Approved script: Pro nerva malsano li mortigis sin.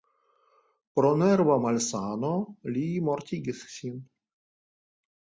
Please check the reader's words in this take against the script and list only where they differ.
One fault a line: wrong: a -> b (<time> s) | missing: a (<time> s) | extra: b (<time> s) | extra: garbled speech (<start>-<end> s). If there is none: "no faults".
no faults